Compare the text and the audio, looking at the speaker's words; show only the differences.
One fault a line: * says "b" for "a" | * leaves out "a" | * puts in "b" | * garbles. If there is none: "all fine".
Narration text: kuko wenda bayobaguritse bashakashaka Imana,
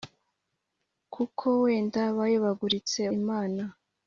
* leaves out "bashakashaka"